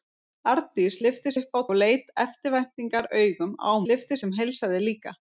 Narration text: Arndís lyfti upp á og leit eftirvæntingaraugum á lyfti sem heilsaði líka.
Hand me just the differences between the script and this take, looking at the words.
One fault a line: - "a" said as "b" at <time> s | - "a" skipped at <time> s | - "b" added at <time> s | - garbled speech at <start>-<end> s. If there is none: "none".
none